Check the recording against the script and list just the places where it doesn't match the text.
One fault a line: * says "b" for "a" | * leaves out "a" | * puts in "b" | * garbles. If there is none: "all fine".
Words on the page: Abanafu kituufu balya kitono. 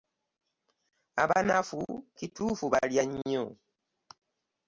* says "nnyo" for "kitono"